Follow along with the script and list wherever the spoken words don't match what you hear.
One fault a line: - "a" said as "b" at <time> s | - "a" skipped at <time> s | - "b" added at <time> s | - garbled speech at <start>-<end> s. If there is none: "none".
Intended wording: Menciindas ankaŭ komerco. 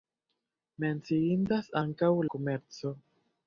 none